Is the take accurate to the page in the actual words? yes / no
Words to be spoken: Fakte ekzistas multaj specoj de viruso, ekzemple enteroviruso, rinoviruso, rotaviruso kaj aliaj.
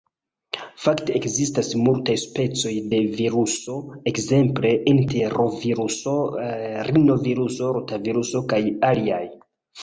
yes